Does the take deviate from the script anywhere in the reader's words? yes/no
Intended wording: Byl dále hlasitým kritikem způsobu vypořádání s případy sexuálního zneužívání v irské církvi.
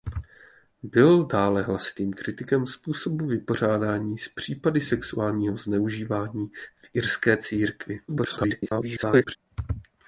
yes